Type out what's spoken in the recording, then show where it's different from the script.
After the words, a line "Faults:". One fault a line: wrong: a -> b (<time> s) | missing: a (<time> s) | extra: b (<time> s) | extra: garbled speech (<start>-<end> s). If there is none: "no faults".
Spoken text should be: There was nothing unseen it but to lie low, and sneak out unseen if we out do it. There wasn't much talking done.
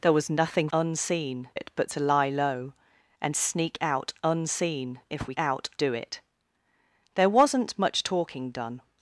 There was nothing unseen it but to lie low, and sneak out unseen if we out do it. There wasn't much talking done.
Faults:
no faults